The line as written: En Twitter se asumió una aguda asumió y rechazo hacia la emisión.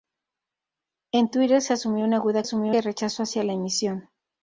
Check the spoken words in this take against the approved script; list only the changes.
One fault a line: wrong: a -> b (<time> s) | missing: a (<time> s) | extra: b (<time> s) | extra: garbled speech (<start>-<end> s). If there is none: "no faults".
no faults